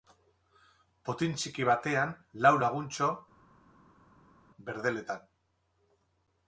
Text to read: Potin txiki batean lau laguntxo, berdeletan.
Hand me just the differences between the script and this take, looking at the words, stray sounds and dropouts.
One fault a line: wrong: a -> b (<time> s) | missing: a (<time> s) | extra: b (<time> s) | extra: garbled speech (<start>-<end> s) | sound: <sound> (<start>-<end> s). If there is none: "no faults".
no faults